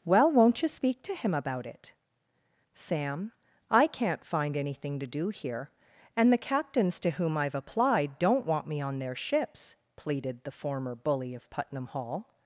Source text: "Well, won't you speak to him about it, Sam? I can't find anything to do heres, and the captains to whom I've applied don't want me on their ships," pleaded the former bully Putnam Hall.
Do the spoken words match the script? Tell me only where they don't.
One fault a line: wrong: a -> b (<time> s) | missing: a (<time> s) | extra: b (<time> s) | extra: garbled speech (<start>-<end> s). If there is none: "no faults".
wrong: heres -> here (5.3 s)
extra: of (11.3 s)